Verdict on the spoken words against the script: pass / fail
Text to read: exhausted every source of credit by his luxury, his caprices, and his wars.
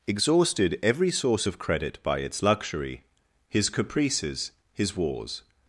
fail